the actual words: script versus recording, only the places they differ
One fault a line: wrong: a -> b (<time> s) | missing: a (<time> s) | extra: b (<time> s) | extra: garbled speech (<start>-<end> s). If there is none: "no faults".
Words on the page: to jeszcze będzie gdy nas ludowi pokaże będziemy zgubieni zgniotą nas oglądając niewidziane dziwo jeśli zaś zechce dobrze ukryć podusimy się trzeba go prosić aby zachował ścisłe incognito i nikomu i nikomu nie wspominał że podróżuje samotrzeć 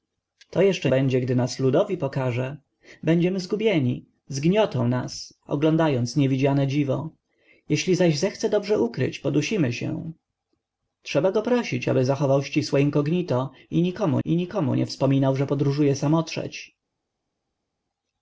no faults